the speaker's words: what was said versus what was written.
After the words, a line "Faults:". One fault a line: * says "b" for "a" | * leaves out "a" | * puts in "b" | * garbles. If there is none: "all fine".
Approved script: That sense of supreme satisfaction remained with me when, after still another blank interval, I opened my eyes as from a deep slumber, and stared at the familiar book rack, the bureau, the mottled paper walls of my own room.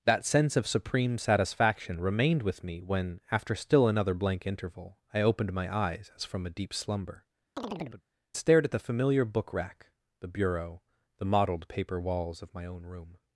That sense of supreme satisfaction remained with me when, after still another blank interval, I opened my eyes as from a deep slumber, stared at the familiar book rack, the bureau, the mottled paper walls of my own room.
Faults:
* leaves out "and"